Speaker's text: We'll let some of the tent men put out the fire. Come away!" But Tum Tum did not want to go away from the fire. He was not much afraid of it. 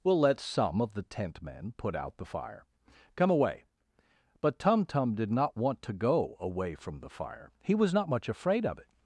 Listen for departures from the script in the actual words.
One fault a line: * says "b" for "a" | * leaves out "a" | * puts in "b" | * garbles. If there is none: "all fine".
all fine